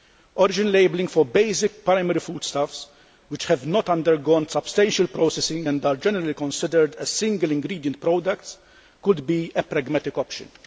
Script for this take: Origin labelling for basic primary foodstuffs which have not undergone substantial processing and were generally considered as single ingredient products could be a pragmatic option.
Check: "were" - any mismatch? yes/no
yes